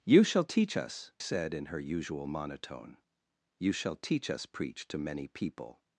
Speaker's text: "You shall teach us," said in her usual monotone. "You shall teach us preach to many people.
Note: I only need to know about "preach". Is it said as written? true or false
true